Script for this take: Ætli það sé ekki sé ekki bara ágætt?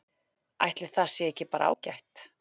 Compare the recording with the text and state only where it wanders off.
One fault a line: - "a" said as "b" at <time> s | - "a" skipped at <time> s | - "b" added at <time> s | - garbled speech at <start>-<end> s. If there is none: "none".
- "sé ekki" skipped at 1.5 s